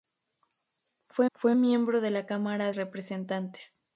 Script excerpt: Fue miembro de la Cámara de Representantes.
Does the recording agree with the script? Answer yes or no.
no